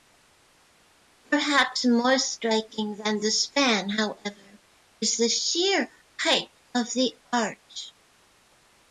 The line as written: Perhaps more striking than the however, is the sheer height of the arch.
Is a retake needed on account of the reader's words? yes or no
yes